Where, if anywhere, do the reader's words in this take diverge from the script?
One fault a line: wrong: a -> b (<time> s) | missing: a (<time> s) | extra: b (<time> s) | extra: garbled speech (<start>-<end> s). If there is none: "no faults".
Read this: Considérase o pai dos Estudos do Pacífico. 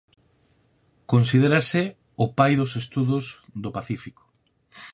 no faults